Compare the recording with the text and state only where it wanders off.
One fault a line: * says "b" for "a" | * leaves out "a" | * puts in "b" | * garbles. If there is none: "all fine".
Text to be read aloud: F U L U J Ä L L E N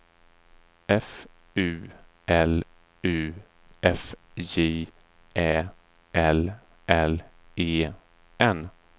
* puts in "F"